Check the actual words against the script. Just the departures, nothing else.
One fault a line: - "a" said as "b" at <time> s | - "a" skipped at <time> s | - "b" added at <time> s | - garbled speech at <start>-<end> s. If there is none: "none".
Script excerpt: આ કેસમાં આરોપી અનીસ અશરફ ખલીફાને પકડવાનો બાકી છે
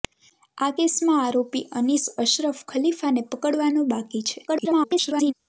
- garbled speech at 4.5-5.3 s